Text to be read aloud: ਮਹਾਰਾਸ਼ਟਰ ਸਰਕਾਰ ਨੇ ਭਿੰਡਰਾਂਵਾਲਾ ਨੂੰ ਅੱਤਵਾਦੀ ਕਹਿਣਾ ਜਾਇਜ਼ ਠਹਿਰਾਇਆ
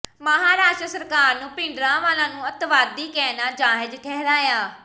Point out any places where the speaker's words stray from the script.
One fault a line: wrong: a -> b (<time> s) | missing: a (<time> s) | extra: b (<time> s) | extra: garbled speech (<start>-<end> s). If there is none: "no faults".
no faults